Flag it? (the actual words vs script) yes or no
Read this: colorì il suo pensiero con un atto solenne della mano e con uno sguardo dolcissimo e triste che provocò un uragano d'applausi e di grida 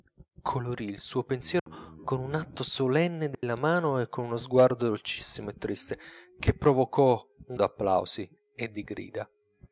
yes